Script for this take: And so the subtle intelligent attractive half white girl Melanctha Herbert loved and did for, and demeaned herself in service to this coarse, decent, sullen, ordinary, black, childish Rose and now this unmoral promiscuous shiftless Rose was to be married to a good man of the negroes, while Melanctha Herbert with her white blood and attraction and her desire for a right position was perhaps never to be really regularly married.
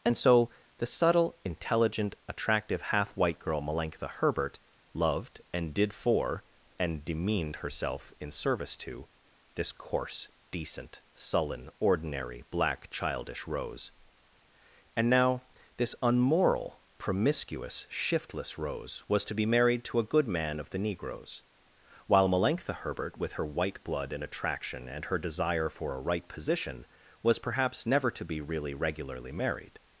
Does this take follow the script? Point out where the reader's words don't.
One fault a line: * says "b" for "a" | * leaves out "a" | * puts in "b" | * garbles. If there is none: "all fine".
all fine